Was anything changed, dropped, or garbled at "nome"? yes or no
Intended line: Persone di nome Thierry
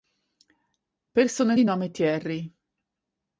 no